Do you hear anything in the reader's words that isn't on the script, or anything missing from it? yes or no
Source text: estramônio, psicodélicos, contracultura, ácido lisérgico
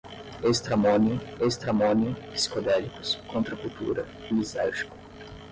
yes